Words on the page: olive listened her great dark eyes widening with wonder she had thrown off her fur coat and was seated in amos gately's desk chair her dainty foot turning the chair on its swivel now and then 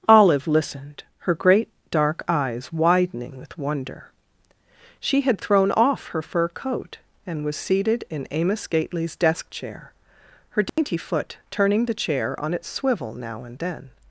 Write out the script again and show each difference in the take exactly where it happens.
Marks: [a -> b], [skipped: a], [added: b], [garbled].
olive listened her great dark eyes widening with wonder she had thrown off her fur coat and was seated in amos gately's desk chair her dainty foot turning the chair on its swivel now and then